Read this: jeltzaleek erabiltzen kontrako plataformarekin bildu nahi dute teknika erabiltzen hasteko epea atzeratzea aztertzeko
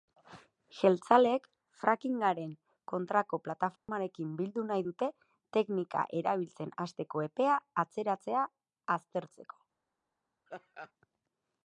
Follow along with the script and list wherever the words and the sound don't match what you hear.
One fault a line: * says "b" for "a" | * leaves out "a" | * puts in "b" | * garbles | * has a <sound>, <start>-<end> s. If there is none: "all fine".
* says "frackingaren" for "erabiltzen"
* has a dropout, 3.8-3.9 s
* has a laugh, 10.5-10.9 s